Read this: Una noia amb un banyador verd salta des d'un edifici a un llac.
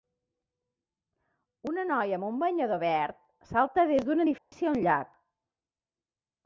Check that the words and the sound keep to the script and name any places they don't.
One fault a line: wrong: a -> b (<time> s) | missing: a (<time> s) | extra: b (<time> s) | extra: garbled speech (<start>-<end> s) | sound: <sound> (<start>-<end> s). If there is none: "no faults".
sound: dropout (4.4-4.5 s)